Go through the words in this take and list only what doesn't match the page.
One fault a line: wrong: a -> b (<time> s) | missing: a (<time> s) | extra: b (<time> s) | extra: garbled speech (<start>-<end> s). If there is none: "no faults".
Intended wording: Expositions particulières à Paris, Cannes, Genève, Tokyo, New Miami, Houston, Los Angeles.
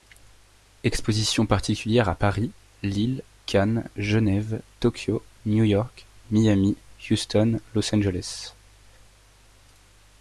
extra: Lille (2.8 s)
extra: York (5.6 s)